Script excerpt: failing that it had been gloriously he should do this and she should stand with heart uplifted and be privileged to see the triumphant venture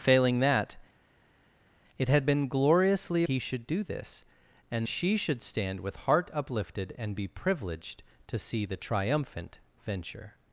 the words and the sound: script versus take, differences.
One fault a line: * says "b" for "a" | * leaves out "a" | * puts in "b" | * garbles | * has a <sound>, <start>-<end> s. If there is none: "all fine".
all fine